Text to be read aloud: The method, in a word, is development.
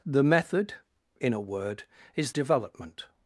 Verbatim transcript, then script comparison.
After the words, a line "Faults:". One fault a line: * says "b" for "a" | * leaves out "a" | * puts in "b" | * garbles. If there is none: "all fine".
The method, in a word, is development.
Faults:
all fine